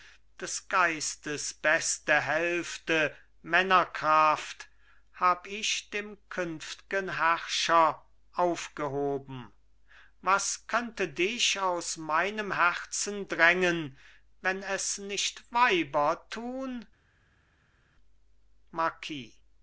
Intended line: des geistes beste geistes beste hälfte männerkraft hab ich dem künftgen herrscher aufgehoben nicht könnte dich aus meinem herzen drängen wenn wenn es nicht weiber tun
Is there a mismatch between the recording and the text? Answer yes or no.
yes